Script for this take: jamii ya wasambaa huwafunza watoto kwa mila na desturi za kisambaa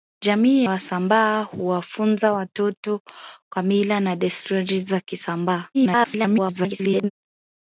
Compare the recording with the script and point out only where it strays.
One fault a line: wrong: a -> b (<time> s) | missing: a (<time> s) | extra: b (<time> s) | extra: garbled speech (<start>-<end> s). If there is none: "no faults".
missing: ya (0.7 s)
extra: garbled speech (5.7-7.1 s)